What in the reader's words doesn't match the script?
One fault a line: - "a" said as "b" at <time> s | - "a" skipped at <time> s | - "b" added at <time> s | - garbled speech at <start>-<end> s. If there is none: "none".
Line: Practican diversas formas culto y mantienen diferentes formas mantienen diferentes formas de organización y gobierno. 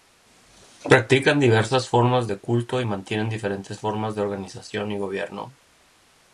- "de" added at 2.3 s
- "mantienen diferentes formas" skipped at 4.2 s